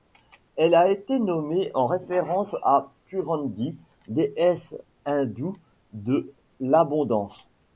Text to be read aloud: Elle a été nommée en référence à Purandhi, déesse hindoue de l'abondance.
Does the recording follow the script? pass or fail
pass